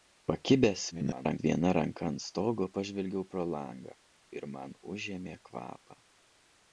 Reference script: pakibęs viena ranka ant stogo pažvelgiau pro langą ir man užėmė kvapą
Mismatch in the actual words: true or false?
true